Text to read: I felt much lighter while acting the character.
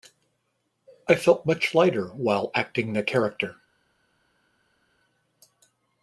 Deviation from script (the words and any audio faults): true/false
false